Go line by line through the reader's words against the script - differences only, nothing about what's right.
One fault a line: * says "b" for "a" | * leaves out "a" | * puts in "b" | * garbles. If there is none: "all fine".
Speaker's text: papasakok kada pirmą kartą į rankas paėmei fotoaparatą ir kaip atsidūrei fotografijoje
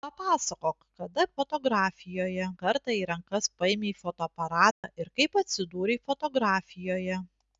* says "fotografijoje" for "pirmą"